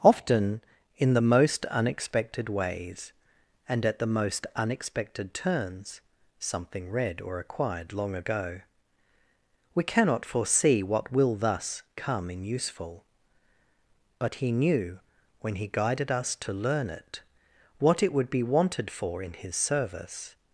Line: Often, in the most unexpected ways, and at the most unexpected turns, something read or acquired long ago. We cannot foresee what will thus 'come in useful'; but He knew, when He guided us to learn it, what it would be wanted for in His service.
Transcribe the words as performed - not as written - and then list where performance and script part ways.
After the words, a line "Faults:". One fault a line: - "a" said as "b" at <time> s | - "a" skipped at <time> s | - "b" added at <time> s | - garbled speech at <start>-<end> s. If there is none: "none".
Often, in the most unexpected ways, and at the most unexpected turns, something read or acquired long ago. We cannot foresee what will thus 'come in useful'; but He knew, when He guided us to learn it, what it would be wanted for in His service.
Faults:
none